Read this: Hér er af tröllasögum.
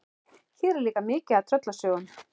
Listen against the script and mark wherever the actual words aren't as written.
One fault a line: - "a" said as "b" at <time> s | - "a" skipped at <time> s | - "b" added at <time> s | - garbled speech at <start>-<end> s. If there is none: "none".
- "líka mikið" added at 0.9 s